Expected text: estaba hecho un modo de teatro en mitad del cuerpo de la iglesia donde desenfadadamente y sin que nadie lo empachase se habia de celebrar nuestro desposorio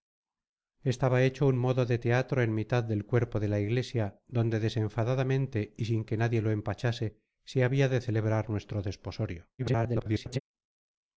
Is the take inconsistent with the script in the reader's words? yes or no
yes